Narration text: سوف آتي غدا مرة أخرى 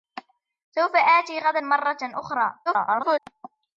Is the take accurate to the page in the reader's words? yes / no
no